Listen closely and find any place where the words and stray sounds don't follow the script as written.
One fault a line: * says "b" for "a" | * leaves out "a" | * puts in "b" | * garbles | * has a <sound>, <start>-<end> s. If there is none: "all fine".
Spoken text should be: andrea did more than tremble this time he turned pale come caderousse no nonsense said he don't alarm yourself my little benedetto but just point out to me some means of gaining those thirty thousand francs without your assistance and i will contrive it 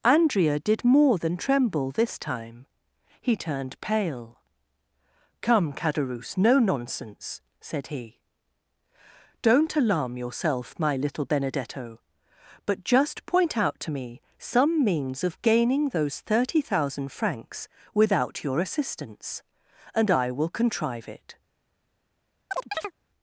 * has a chirp, 22.5-22.9 s